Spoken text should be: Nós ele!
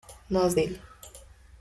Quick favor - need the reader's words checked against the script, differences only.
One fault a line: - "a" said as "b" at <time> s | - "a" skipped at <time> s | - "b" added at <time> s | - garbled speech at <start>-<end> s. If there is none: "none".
none